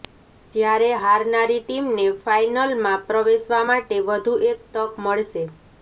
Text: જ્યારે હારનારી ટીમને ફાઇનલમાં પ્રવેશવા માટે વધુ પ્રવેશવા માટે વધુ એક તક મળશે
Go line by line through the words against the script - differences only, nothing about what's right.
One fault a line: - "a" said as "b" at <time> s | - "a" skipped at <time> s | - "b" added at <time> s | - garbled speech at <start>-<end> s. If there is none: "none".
- "પ્રવેશવા માટે વધુ" skipped at 4.4 s